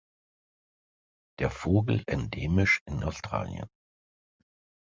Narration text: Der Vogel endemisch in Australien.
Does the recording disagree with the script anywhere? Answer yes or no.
no